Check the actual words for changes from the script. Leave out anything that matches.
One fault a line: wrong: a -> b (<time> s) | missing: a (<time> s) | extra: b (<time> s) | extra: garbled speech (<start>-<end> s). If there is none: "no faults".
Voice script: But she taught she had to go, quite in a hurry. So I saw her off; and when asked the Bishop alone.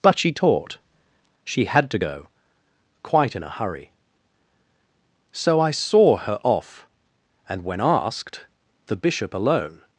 no faults